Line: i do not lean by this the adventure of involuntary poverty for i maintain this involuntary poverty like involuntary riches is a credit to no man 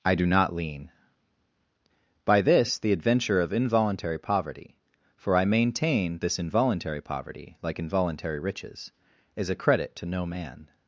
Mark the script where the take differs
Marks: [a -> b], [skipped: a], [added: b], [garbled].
i do not lean by this the adventure of involuntary poverty for i maintain this involuntary poverty like involuntary riches is a credit to no man